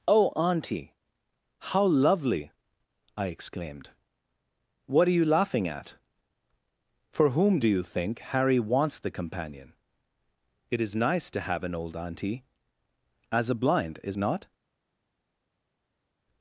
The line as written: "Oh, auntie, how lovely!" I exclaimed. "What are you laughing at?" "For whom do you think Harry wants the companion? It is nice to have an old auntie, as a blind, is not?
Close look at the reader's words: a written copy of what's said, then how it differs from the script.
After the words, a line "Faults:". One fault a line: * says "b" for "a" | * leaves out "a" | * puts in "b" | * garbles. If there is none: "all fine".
"Oh, auntie, how lovely!" I exclaimed. "What are you laughing at?" "For whom do you think Harry wants the companion? It is nice to have an old auntie, as a blind, is not?
Faults:
all fine